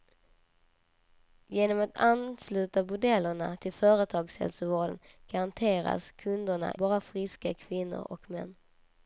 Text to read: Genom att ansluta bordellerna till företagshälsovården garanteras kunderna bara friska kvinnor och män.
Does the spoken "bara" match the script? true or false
true